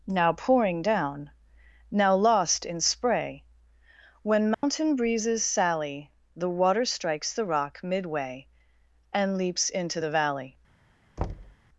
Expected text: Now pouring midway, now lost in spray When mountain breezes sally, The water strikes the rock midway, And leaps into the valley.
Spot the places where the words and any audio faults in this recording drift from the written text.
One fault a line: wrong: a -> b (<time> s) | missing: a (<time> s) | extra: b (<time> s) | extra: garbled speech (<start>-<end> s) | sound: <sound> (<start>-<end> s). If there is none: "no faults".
wrong: midway -> down (0.8 s)
sound: dropout (4.5-4.6 s)
sound: thud (11.2-11.6 s)